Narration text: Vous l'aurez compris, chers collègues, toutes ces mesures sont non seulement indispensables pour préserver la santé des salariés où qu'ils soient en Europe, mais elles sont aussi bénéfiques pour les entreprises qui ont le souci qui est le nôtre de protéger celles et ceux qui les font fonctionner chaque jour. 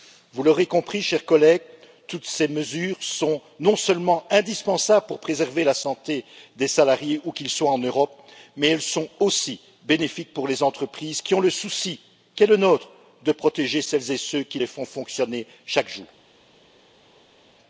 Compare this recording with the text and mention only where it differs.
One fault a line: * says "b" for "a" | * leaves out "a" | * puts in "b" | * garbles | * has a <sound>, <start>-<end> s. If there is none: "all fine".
all fine